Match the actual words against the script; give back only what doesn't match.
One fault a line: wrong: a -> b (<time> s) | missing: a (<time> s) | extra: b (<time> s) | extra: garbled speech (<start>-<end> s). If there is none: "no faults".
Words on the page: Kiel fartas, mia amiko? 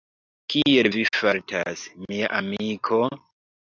extra: vi (1.0 s)